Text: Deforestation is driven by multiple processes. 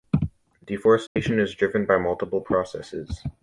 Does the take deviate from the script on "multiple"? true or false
false